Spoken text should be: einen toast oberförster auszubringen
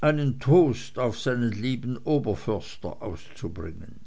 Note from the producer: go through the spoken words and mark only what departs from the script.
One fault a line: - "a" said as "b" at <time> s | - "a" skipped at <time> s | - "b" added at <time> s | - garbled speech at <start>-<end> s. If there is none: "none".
- "auf seinen lieben" added at 1.0 s